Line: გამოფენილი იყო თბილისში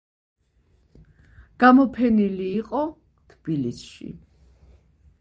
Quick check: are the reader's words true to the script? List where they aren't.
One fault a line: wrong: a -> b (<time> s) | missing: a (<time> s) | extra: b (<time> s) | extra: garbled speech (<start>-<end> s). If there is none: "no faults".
no faults